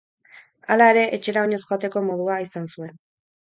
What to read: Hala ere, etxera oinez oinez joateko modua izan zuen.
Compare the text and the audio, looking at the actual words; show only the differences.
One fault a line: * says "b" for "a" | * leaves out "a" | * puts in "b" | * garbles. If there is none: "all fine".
* leaves out "oinez"